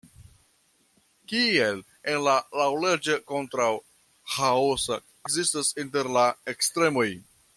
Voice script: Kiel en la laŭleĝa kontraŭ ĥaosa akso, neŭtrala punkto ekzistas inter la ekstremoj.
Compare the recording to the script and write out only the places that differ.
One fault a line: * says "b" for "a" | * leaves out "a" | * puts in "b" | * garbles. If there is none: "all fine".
* leaves out "akso neŭtrala punkto"